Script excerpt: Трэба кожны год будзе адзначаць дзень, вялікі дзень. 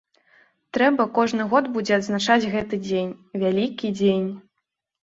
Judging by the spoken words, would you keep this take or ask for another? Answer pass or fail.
fail